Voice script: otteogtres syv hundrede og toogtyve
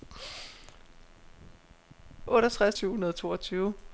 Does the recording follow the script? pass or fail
pass